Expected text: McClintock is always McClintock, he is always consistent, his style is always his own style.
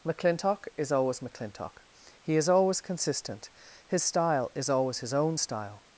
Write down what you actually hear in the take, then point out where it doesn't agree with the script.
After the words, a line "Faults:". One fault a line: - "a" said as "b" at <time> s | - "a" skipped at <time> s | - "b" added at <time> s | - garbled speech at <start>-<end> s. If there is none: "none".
McClintock is always McClintock, he is always consistent, his style is always his own style.
Faults:
none